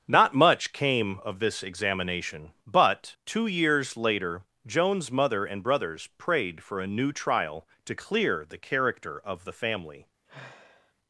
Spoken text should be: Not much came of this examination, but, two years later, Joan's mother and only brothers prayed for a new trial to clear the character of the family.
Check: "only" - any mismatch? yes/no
yes